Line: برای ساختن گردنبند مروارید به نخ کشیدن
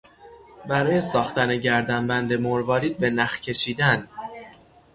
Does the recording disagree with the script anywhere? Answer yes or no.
no